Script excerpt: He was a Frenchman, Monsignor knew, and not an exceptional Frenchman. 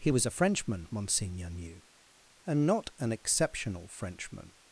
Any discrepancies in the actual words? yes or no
no